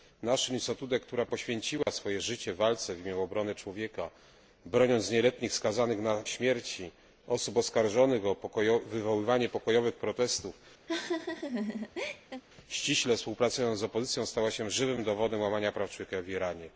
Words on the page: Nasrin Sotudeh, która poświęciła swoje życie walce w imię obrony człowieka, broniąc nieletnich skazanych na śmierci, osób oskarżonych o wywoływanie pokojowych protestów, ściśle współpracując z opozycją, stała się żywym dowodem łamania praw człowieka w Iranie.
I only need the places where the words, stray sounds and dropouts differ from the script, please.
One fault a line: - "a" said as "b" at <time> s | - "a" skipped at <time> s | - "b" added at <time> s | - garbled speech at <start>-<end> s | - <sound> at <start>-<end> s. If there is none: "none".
- dropout at 1.8-1.9 s
- laugh at 10.9-12.4 s